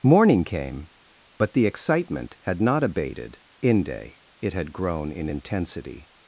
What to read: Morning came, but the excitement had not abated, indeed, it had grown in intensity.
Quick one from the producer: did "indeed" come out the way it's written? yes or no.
no